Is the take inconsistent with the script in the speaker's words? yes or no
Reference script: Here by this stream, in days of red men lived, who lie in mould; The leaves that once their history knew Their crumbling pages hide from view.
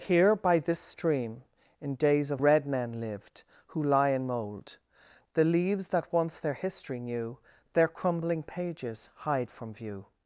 no